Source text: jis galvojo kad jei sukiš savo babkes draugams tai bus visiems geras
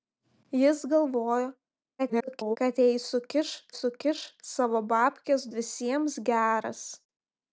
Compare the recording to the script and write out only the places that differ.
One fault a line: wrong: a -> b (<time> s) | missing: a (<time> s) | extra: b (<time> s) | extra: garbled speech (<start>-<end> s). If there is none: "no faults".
extra: garbled speech (2.0-2.6 s)
extra: sukiš (3.8 s)
missing: draugams tai bus (5.4 s)